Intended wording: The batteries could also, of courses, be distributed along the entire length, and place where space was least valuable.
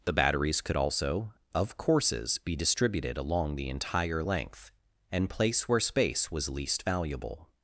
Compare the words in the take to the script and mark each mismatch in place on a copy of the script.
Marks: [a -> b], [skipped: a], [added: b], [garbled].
The batteries could also, of courses, be distributed along the entire length, and place where space was least valuable.